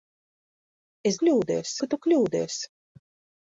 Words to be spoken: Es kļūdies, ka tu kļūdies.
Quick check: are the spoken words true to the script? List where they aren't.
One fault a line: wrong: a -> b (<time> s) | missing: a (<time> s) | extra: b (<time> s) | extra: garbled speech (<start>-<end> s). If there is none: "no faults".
no faults